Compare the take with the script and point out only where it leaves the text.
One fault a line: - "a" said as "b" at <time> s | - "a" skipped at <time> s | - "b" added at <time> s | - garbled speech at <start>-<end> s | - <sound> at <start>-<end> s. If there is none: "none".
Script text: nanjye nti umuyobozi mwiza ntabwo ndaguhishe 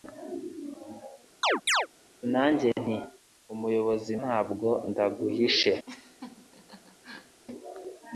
- chirp at 1.4-1.9 s
- "mwiza" skipped at 4.1 s
- laugh at 5.8-7.4 s